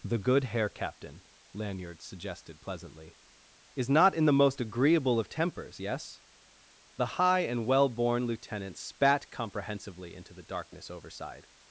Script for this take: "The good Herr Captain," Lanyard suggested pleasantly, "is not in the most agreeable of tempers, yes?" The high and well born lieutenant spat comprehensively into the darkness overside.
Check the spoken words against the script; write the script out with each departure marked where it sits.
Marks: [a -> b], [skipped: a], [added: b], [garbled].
"The good Herr Captain," Lanyard suggested pleasantly, "is not in the most agreeable of tempers, yes?" The high and well born lieutenant spat comprehensively into the darkness overside.